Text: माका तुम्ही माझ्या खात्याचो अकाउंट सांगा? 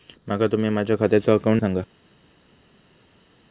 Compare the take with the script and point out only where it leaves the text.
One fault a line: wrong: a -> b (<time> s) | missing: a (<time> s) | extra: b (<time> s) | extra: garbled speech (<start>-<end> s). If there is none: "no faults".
no faults